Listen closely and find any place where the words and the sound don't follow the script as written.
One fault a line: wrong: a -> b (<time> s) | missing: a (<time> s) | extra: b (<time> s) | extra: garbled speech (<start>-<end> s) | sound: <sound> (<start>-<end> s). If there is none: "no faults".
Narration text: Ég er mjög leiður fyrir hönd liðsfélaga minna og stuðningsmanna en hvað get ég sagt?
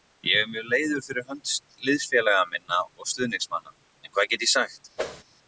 sound: whoosh (5.0-5.2 s)